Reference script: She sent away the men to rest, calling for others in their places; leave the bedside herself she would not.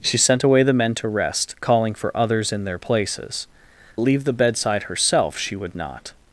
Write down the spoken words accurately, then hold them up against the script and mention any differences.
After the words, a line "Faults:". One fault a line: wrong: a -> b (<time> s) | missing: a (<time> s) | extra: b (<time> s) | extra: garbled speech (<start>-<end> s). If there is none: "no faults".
She sent away the men to rest, calling for others in their places; leave the bedside herself she would not.
Faults:
no faults